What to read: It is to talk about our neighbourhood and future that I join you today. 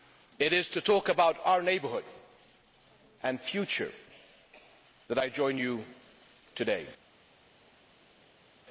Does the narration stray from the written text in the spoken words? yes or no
no